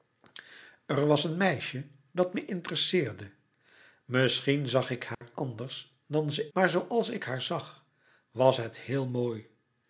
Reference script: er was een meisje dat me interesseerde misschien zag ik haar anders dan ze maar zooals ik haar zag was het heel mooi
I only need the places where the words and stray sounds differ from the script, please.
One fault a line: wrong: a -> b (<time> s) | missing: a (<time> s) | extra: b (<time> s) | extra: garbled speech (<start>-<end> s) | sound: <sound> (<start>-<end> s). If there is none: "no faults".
sound: dropout (5.1-5.2 s)